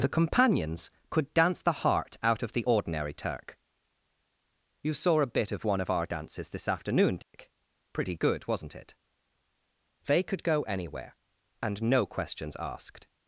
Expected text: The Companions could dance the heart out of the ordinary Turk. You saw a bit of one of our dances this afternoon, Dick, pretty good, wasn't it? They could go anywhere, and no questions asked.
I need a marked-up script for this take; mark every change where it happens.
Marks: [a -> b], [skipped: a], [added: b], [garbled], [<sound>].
The Companions could dance the heart out of the ordinary Turk. You saw a bit of one of our dances this afternoon, Dick, [dropout] pretty good, wasn't it? They could go anywhere, and no questions asked.